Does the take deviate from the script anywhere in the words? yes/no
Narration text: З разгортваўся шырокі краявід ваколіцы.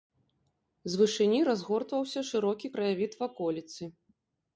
yes